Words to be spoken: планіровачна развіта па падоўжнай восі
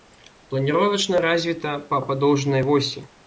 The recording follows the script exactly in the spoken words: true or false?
true